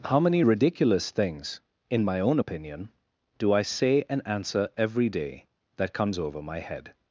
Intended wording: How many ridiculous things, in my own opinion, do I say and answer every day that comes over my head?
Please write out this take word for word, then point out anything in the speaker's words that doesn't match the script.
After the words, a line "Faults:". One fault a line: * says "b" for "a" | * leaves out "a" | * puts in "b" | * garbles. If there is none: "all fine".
How many ridiculous things, in my own opinion, do I say and answer every day that comes over my head?
Faults:
all fine